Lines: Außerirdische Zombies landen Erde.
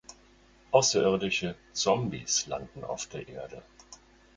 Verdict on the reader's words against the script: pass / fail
fail